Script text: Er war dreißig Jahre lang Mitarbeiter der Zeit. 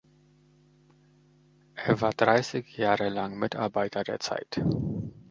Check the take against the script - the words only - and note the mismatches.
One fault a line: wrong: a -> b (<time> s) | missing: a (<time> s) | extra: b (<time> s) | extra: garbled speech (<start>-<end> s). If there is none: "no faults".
no faults